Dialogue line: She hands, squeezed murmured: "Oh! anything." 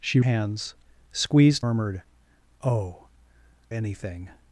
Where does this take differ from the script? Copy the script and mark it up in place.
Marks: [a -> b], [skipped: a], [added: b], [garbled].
She hands, squeezed murmured: "Oh! anything."